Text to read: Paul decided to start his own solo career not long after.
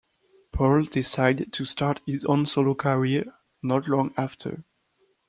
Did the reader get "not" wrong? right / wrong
right